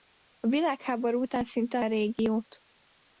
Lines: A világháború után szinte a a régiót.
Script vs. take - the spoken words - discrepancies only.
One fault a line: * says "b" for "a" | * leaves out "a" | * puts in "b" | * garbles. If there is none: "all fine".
all fine